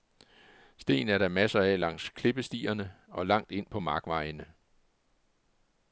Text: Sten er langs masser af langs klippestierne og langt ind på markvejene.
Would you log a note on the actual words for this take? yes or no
yes